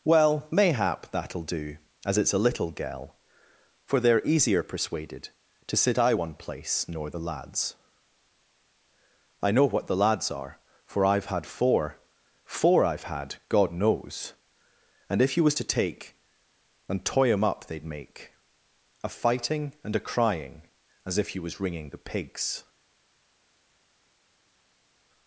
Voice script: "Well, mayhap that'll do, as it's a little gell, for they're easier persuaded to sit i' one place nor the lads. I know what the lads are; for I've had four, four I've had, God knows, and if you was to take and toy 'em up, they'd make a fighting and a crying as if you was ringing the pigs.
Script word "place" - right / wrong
right